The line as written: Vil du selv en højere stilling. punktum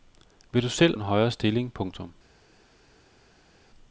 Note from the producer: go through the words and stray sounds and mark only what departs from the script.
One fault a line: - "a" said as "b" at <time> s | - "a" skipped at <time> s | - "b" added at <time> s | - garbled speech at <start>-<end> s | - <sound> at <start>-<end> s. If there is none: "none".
none